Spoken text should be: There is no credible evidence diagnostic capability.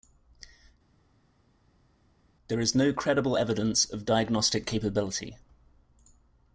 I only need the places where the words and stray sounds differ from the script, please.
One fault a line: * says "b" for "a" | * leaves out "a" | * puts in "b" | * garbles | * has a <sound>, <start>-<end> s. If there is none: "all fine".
* puts in "of"